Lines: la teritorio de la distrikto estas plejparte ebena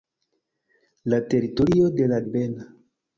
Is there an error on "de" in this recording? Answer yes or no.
no